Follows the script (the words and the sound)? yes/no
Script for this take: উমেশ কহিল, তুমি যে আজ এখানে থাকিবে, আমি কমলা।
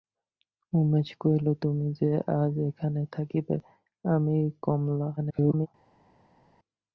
no